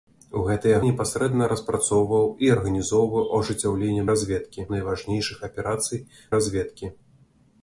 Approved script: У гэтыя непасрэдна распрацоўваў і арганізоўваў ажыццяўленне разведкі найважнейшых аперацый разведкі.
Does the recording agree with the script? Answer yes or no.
yes